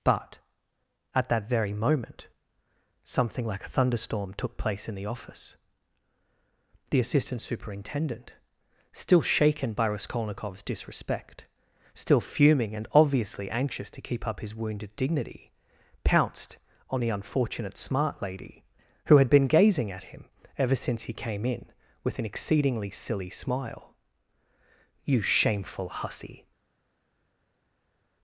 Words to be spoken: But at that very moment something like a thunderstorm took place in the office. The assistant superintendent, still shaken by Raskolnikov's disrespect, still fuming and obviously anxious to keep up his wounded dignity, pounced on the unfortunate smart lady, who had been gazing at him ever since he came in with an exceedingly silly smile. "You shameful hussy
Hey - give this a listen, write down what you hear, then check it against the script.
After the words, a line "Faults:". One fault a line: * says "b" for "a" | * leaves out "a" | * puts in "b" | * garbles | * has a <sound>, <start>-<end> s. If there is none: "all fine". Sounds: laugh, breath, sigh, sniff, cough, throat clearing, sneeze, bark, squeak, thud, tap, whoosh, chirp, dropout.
But at that very moment something like a thunderstorm took place in the office. The assistant superintendent, still shaken by Raskolnikov's disrespect, still fuming and obviously anxious to keep up his wounded dignity, pounced on the unfortunate smart lady, who had been gazing at him ever since he came in with an exceedingly silly smile. "You shameful hussy
Faults:
all fine